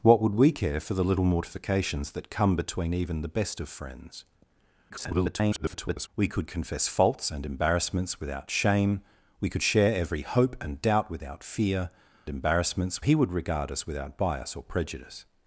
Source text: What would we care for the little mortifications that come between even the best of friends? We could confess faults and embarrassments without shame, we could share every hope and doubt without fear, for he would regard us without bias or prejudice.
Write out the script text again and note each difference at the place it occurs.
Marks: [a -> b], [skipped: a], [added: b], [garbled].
What would we care for the little mortifications that come between even the best of friends? [garbled] We could confess faults and embarrassments without shame, we could share every hope and doubt without fear, [for -> embarrassments] he would regard us without bias or prejudice.